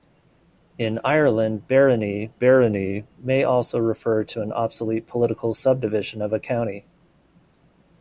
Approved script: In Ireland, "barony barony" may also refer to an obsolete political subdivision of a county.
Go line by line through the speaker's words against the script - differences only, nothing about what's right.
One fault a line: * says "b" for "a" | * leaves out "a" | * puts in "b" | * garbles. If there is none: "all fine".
all fine